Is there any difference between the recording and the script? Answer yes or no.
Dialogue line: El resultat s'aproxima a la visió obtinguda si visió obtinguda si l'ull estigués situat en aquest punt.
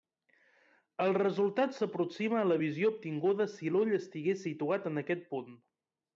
yes